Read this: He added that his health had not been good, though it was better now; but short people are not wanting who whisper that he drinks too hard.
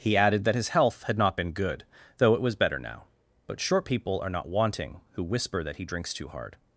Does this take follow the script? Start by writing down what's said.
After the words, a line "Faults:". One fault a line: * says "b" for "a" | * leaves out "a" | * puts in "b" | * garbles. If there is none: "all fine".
He added that his health had not been good, though it was better now; but short people are not wanting who whisper that he drinks too hard.
Faults:
all fine